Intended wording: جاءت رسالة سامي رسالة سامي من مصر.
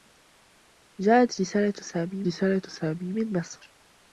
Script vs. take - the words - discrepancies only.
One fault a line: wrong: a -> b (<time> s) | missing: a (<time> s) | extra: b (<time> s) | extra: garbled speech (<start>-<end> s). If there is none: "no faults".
no faults